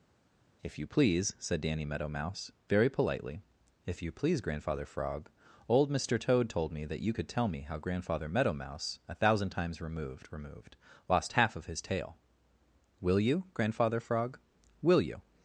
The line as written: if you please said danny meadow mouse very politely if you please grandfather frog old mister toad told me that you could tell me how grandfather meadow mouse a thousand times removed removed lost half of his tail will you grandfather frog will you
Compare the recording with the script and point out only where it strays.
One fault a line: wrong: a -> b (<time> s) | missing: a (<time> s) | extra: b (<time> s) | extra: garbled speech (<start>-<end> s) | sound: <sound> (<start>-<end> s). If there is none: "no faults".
no faults